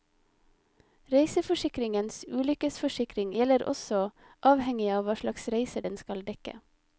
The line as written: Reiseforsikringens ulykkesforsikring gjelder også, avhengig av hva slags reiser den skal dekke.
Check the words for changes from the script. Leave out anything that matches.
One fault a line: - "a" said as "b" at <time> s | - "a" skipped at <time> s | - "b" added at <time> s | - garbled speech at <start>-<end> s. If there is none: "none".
none